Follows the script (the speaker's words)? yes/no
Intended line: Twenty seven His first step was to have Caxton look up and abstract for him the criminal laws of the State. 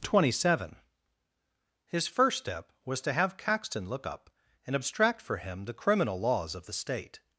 yes